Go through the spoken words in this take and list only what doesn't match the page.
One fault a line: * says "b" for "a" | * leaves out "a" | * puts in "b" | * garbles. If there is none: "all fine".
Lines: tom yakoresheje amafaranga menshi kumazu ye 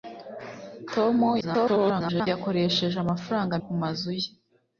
* garbles
* leaves out "menshi"